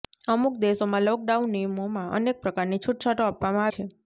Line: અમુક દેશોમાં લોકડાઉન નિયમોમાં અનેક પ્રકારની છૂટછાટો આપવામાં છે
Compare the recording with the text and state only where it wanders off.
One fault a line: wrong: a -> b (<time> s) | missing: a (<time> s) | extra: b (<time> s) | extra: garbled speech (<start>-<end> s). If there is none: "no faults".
no faults